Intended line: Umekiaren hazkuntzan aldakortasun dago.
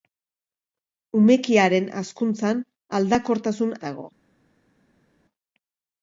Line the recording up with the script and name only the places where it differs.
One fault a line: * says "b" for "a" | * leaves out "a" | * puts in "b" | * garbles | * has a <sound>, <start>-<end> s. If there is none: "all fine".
all fine